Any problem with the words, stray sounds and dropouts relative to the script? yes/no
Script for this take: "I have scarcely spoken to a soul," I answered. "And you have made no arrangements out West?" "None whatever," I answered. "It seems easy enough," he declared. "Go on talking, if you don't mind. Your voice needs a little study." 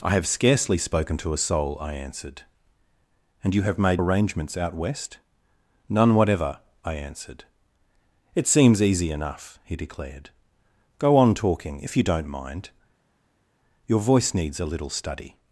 yes